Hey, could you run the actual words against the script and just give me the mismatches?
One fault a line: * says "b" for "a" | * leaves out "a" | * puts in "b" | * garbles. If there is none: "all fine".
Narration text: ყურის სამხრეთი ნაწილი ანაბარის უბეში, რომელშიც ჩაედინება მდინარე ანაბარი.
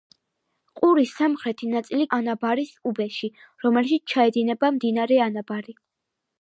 all fine